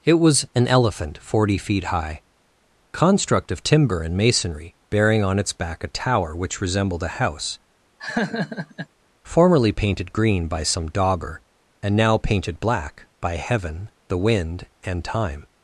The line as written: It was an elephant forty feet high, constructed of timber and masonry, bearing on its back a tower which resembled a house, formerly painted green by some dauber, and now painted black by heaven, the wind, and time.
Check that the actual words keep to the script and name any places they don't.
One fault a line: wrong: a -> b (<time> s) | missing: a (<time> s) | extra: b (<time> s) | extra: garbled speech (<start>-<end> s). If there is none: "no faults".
wrong: constructed -> construct (2.9 s)